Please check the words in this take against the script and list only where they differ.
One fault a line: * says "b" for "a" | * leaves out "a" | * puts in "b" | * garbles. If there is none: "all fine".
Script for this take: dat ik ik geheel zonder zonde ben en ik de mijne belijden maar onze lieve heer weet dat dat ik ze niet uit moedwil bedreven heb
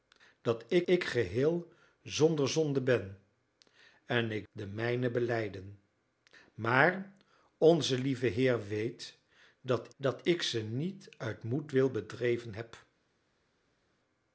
all fine